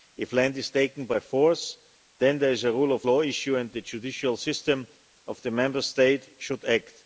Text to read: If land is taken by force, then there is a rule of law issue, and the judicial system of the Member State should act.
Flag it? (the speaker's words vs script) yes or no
no